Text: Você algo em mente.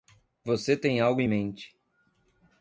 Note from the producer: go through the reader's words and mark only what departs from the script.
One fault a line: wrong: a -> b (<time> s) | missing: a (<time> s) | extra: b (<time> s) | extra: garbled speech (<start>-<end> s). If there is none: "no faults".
extra: tem (0.8 s)